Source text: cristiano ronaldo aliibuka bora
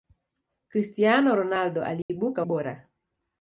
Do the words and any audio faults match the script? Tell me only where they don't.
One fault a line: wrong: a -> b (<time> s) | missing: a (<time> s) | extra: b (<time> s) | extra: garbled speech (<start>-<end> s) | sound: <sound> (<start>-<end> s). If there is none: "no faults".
sound: dropout (2.0-2.1 s)